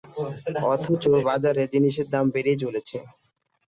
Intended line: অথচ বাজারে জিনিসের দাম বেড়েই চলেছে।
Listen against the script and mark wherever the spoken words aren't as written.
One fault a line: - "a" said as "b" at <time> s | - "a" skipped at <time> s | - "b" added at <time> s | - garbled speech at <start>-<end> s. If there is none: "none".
none